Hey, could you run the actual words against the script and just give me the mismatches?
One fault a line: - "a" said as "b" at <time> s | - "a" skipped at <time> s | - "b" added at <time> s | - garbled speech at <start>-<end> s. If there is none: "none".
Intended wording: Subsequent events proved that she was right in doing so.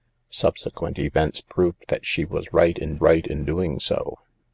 - "right in" added at 3.0 s